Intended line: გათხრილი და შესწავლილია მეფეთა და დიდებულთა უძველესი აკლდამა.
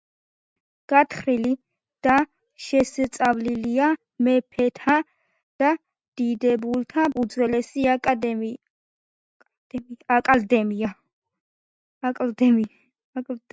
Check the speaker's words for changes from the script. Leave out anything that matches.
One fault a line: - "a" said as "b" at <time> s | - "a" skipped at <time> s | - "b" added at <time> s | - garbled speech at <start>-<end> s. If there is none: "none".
none